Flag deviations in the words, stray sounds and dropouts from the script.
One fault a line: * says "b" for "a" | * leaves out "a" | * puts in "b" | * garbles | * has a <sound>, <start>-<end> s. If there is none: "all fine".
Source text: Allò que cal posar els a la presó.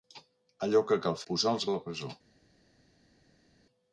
all fine